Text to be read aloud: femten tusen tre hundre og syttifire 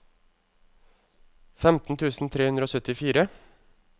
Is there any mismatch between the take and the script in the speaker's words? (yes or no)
no